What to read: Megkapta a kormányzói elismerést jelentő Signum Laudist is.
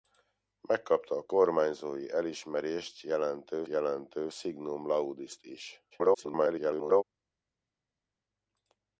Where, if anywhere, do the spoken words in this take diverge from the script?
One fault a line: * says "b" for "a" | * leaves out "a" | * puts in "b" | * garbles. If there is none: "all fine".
* puts in "jelentő"
* garbles